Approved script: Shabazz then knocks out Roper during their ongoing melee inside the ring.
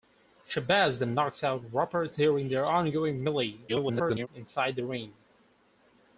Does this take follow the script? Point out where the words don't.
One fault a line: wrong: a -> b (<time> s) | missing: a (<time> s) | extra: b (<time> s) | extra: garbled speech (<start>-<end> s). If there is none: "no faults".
extra: garbled speech (3.7-4.3 s)